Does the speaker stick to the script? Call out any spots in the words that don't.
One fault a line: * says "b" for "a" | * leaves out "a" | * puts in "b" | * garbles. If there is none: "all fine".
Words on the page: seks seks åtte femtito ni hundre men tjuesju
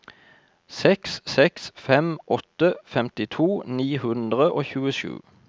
* puts in "fem"
* says "og" for "men"